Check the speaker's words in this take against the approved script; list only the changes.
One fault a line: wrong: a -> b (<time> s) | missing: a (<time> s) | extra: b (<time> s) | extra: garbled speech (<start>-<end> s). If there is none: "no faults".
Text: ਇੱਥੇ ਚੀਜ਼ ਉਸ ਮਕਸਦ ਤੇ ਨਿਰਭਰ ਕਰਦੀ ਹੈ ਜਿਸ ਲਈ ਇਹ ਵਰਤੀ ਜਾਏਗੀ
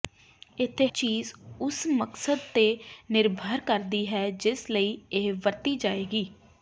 no faults